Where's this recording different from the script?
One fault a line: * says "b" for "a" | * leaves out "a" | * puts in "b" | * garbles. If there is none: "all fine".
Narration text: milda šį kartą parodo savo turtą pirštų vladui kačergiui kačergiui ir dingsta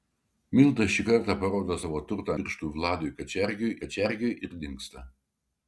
all fine